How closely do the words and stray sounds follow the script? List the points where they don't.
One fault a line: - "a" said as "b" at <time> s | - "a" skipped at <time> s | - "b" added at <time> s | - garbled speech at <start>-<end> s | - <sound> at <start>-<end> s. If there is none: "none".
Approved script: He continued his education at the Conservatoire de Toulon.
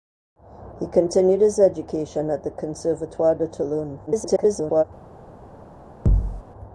- garbled speech at 4.1-4.8 s
- thud at 6.1-6.4 s